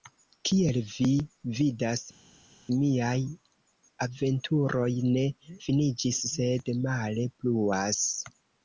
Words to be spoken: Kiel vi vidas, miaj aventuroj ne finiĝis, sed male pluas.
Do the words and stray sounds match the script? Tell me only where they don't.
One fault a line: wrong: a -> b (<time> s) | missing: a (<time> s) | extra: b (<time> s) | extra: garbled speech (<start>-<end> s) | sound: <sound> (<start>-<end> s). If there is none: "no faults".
no faults